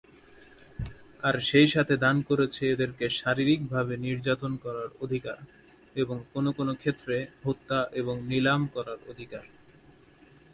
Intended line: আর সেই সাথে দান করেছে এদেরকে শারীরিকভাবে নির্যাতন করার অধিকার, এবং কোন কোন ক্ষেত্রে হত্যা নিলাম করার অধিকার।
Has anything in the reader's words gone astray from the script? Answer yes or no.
yes